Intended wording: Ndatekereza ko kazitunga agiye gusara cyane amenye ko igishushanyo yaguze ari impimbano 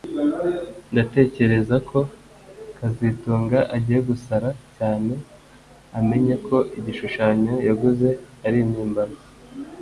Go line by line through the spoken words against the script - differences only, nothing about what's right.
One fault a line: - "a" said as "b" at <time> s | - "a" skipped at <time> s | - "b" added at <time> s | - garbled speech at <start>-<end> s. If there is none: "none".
none